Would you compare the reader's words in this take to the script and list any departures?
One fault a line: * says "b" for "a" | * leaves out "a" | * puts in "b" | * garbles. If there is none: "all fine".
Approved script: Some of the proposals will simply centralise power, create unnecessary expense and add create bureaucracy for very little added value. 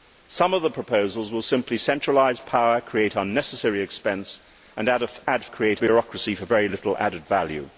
all fine